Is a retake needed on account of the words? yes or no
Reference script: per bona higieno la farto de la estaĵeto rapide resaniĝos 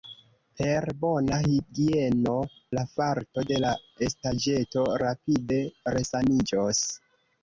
no